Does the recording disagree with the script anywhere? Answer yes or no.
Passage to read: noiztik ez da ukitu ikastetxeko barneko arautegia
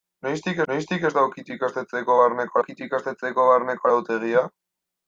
yes